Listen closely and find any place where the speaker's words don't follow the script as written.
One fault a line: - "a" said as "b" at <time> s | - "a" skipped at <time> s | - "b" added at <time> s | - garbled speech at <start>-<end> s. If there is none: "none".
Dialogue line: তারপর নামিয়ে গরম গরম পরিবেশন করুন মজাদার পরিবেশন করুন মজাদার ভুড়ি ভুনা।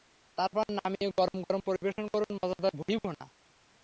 - "পরিবেশন করুন মজাদার" skipped at 2.7 s